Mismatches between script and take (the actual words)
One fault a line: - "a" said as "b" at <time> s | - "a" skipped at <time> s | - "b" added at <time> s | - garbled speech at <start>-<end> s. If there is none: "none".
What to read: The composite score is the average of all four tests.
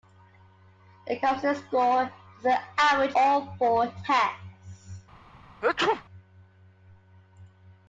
- "of" skipped at 3.1 s